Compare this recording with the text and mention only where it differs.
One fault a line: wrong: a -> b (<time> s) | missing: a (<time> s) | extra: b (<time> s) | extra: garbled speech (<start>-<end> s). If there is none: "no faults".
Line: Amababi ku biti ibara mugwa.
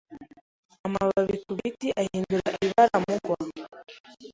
extra: ahindura (2.0 s)